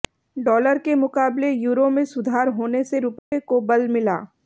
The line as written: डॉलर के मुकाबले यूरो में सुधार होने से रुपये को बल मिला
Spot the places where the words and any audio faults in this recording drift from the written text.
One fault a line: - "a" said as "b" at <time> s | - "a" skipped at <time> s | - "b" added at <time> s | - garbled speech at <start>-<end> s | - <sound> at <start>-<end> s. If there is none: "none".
- dropout at 3.2-3.3 s